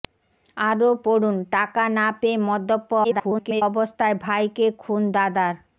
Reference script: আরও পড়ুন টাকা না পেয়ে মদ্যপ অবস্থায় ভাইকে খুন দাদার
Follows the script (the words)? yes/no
no